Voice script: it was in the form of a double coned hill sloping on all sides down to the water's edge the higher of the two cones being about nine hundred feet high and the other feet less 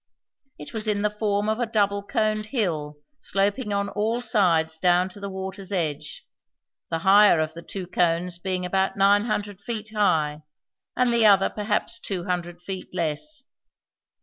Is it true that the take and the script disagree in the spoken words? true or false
true